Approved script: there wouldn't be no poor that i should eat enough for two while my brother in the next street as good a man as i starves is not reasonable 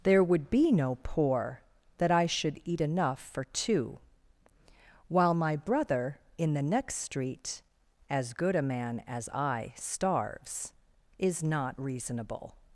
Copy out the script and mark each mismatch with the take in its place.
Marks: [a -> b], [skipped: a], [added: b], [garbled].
there [wouldn't -> would] be no poor that i should eat enough for two while my brother in the next street as good a man as i starves is not reasonable